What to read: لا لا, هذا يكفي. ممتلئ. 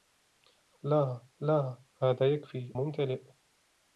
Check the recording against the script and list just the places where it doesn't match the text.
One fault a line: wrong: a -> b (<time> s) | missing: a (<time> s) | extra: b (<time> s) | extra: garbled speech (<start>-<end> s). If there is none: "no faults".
no faults